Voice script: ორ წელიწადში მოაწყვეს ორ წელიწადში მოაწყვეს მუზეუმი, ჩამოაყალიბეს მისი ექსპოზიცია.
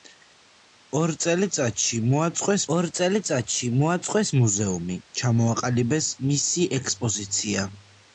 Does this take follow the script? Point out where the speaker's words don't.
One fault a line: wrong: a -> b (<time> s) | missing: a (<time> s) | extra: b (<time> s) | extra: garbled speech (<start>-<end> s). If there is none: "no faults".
no faults